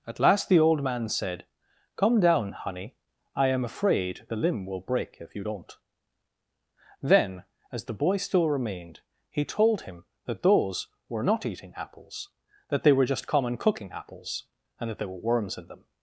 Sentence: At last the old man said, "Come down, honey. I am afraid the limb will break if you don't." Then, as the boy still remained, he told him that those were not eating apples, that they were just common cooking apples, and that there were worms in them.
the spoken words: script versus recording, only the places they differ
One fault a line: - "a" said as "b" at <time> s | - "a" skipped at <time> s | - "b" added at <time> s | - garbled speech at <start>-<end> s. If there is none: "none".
none